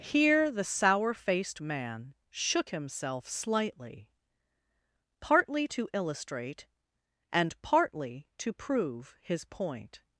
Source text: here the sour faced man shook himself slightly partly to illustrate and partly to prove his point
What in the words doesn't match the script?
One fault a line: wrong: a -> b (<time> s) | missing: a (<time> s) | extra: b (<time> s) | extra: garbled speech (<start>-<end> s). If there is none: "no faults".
no faults